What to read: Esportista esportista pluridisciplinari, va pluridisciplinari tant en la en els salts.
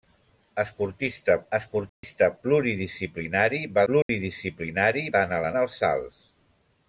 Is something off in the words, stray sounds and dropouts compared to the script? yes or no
yes